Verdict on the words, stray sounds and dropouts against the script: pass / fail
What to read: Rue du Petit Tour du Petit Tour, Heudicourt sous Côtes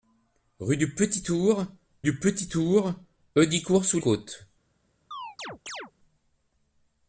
fail